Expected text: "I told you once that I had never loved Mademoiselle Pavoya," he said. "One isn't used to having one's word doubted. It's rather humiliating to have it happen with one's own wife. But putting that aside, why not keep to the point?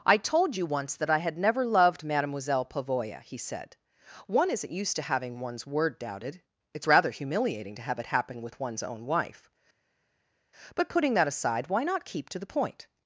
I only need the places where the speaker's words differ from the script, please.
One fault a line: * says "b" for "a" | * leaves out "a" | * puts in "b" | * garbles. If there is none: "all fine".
all fine